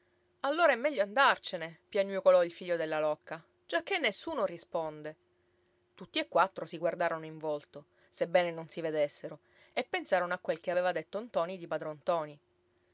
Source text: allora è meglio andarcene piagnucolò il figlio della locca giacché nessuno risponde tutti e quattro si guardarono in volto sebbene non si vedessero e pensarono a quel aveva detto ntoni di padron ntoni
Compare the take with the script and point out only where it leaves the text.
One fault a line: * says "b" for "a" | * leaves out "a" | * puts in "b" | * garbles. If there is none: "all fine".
* puts in "che"